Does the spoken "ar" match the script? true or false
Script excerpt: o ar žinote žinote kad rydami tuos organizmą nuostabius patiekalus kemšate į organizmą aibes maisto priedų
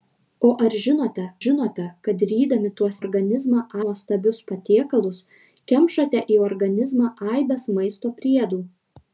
true